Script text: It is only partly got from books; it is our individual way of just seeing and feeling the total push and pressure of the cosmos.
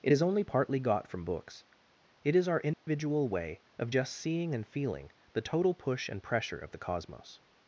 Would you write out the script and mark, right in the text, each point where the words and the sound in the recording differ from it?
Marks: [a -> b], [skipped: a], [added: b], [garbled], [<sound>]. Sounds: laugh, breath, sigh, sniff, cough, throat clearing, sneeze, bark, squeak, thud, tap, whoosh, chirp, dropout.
It is only partly got from books; it is our individual [dropout] way of just seeing and feeling the total push and pressure of the cosmos.